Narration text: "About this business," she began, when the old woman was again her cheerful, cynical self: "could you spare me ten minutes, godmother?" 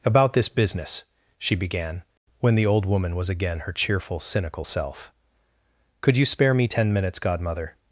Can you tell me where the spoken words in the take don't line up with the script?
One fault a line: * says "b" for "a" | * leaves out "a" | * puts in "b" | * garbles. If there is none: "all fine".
all fine